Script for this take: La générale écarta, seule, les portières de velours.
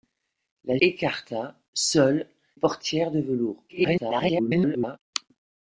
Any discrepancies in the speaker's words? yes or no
yes